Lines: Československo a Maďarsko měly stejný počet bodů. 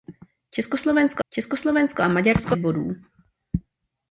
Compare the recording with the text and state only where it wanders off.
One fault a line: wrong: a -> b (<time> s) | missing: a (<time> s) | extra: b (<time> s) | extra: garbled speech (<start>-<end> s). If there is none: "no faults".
extra: československo (1.3 s)
missing: měly stejný počet (2.6 s)